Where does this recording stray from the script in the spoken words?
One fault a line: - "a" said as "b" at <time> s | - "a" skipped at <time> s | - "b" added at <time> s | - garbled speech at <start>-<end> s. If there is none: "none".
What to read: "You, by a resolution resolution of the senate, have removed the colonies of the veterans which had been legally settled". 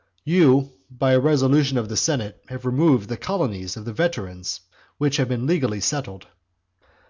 - "resolution" skipped at 1.8 s